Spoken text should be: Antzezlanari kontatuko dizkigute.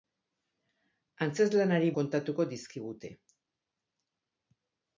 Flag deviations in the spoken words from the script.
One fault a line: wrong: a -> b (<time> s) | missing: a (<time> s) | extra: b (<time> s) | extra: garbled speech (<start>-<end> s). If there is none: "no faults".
no faults